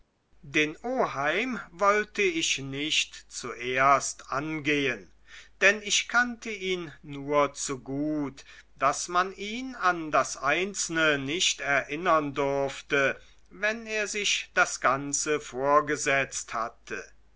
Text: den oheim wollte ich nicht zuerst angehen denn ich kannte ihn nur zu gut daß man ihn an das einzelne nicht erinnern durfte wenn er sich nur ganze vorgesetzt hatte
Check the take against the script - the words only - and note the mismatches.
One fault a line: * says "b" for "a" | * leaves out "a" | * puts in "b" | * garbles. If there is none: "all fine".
* says "das" for "nur"